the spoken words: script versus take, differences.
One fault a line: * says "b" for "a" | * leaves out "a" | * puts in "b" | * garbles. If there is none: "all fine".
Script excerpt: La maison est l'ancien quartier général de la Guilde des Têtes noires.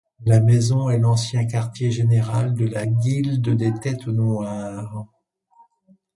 all fine